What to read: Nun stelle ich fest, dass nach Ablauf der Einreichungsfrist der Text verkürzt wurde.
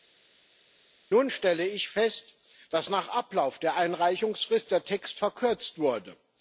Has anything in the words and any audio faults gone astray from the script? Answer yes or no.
no